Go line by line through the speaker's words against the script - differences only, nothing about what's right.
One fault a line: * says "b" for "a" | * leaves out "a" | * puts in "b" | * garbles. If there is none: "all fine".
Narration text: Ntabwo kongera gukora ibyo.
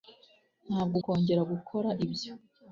all fine